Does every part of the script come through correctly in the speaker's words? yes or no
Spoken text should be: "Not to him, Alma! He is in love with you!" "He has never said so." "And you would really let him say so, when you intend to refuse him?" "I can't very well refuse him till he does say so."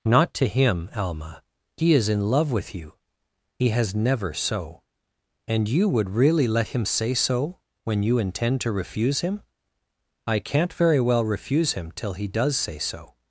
no